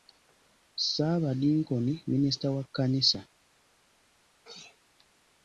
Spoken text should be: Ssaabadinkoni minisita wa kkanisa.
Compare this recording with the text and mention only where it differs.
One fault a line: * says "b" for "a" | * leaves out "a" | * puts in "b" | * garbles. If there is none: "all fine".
all fine